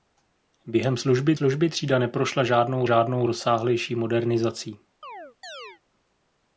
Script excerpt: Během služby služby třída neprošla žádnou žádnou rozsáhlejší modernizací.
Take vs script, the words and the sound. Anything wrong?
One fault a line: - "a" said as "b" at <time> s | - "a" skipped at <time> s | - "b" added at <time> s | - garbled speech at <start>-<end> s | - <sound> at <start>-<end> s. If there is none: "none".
- chirp at 5.0-5.8 s